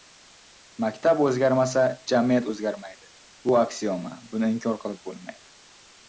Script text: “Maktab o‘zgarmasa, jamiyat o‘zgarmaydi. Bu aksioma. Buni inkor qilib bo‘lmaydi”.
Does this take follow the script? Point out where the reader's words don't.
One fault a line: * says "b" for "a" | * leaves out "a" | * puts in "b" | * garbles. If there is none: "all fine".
all fine